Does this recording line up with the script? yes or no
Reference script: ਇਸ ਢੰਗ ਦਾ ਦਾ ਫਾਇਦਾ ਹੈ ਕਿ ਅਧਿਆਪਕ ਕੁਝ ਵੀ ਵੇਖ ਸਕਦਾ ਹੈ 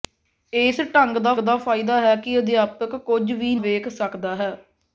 yes